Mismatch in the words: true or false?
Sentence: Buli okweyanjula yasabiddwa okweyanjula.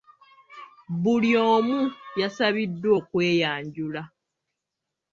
true